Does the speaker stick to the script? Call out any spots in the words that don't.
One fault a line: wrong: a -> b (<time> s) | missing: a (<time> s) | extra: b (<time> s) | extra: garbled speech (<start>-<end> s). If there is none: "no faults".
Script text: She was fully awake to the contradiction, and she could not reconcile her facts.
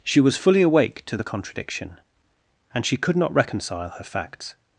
no faults